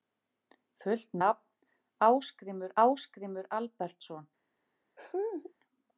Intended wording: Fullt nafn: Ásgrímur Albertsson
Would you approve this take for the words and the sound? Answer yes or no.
no